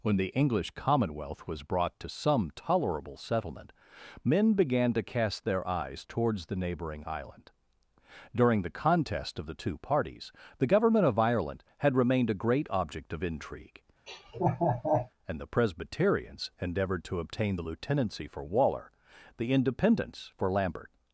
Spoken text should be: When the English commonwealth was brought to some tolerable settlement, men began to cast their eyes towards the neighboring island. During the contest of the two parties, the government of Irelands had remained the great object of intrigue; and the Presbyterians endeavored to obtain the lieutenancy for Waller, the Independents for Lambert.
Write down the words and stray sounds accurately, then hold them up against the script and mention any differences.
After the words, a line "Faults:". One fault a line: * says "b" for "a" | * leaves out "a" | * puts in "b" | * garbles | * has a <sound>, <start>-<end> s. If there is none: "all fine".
When the English commonwealth was brought to some tolerable settlement, men began to cast their eyes towards the neighboring island. During the contest of the two parties, the government of Ireland had remained a great object of intrigue; and the Presbyterians endeavored to obtain the lieutenancy for Waller, the Independents for Lambert.
Faults:
* says "Ireland" for "Irelands"
* says "a" for "the"
* has a laugh, 14.1-15.1 s